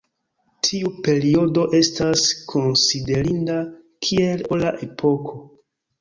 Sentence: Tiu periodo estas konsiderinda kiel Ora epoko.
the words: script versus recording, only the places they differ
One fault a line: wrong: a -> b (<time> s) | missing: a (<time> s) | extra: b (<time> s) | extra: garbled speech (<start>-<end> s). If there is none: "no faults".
no faults